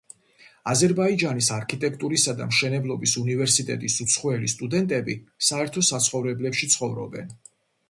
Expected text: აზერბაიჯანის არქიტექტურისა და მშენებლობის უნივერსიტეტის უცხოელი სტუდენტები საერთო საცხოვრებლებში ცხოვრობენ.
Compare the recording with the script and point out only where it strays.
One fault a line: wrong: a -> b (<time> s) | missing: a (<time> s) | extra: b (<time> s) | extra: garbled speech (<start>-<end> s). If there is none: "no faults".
no faults